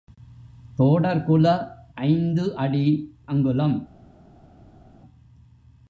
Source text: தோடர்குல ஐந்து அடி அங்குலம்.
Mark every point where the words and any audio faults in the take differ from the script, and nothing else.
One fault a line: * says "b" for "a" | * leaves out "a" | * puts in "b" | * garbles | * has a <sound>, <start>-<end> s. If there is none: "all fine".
all fine